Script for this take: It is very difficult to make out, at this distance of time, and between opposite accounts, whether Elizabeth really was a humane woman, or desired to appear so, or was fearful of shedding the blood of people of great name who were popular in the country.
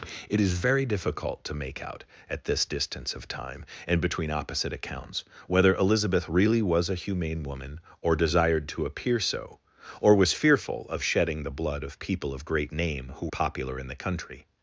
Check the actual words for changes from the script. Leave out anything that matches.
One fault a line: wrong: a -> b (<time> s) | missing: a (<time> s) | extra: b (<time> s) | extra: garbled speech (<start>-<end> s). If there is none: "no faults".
missing: were (13.3 s)